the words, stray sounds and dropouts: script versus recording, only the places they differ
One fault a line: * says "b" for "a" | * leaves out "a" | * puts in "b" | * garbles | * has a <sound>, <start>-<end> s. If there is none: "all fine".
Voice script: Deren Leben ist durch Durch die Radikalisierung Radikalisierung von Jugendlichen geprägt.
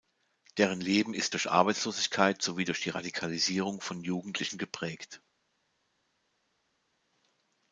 * puts in "Arbeitslosigkeit sowie"
* leaves out "Radikalisierung"